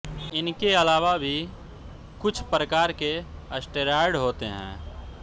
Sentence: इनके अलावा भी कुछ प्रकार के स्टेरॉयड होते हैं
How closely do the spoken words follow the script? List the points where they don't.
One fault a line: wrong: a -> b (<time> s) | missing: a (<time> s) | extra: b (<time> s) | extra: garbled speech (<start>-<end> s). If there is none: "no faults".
no faults